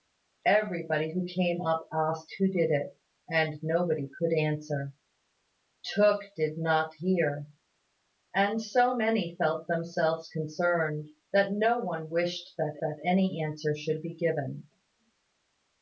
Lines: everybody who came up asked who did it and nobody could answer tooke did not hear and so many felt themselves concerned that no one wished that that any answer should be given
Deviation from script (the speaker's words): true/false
false